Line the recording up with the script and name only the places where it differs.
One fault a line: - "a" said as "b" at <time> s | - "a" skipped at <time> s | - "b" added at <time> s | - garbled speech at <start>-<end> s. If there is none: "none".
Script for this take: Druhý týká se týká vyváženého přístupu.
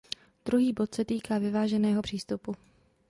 - "týká" said as "bod" at 0.7 s